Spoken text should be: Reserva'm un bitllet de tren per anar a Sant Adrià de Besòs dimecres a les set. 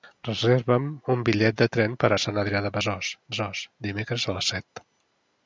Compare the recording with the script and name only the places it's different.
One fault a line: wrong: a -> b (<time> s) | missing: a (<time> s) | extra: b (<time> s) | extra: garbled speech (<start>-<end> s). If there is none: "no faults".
missing: anar (2.1 s)
extra: Besòs (3.3 s)